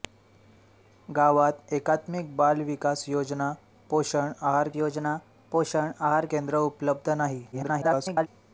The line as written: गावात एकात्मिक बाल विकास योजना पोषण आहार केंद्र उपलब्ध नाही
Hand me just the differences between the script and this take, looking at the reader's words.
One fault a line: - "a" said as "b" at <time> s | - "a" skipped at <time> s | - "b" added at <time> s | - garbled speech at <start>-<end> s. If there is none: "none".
- "योजना पोषण आहार" added at 4.8 s
- garbled speech at 7.5-8.3 s